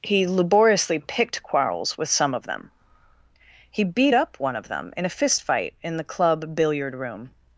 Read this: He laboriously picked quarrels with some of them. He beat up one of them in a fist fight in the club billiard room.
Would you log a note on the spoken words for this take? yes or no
no